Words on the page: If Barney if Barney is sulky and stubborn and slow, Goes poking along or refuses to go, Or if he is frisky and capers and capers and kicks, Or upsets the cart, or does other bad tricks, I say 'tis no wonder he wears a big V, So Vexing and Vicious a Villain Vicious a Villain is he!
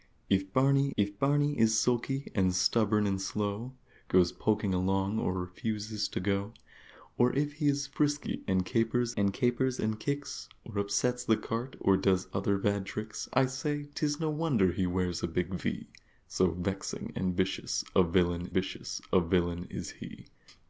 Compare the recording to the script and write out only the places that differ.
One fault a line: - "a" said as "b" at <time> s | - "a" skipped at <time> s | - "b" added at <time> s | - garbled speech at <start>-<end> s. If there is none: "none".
none